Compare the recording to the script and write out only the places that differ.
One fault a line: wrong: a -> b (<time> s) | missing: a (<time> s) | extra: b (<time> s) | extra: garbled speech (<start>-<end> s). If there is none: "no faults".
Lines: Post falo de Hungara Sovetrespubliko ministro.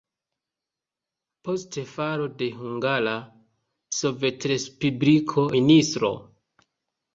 no faults